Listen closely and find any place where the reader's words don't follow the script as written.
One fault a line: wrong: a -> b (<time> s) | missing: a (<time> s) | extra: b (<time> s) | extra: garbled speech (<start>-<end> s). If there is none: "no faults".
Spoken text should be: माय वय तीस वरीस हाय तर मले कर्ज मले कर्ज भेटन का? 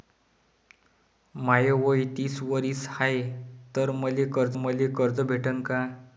no faults